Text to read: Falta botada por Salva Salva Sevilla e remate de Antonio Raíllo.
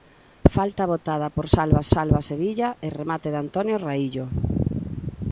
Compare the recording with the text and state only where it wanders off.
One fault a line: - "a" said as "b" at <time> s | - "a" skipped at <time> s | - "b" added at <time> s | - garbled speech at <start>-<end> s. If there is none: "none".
none